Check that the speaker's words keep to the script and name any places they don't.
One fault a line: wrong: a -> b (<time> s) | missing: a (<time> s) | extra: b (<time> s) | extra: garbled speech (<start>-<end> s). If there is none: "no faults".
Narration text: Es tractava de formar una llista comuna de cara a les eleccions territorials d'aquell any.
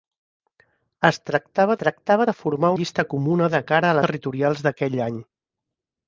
extra: tractava (1.8 s)
missing: una (2.7 s)
missing: les eleccions (4.0 s)